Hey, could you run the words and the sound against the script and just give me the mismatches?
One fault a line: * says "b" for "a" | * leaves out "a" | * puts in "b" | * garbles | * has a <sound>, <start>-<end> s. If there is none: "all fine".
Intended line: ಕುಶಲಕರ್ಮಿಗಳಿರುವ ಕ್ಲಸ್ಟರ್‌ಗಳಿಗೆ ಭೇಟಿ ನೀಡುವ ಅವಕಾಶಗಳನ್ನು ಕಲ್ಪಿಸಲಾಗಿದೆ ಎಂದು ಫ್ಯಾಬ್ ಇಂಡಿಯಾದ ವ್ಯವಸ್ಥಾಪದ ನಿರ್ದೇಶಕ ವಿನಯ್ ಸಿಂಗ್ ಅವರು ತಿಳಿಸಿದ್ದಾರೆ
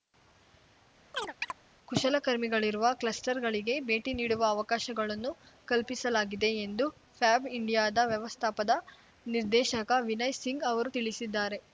* has a chirp, 1.1-1.5 s